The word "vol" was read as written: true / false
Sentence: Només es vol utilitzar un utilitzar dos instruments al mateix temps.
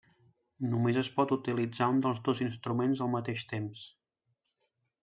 false